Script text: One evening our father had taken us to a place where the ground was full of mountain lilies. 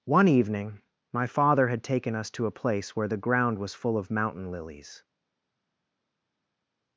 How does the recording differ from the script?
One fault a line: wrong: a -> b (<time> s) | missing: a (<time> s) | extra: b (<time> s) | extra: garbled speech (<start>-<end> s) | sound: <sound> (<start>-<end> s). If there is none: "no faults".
wrong: our -> my (1.1 s)